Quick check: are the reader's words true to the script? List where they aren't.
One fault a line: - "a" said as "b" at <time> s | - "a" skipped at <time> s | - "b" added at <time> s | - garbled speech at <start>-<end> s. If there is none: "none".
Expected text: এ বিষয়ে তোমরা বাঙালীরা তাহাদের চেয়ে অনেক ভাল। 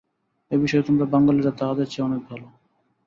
none